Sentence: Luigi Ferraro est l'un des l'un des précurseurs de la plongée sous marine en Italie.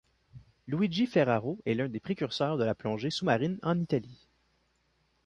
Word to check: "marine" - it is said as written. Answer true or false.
true